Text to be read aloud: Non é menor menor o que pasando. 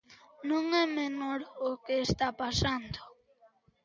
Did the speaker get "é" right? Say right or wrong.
right